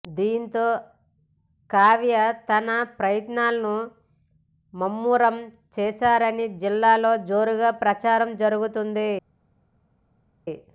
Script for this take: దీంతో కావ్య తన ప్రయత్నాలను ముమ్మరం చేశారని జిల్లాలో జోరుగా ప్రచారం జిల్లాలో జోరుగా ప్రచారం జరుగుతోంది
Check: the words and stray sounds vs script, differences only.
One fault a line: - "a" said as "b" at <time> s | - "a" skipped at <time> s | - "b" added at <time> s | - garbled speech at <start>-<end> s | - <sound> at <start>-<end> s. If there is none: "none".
- "జిల్లాలో జోరుగా ప్రచారం" skipped at 8.3 s